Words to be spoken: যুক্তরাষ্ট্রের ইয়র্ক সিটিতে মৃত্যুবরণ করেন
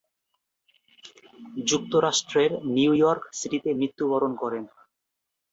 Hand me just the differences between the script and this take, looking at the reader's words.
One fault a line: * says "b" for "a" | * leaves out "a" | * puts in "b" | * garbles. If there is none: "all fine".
* puts in "নিউ"